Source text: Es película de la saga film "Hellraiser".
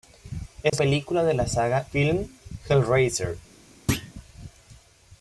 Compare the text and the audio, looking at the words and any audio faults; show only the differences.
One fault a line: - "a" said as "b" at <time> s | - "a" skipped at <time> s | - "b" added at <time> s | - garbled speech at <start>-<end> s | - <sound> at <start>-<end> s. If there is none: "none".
- dropout at 0.7-0.7 s
- thud at 3.9-4.1 s